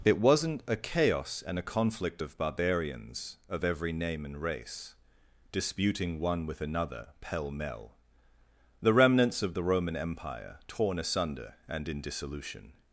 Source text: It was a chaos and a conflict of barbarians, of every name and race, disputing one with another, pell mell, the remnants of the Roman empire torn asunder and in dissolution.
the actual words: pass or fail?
fail